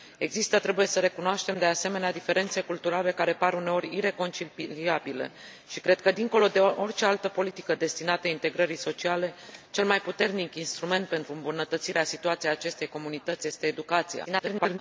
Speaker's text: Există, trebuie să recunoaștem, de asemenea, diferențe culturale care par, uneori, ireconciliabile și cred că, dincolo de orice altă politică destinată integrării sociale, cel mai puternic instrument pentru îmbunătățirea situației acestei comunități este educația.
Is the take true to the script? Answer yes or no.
no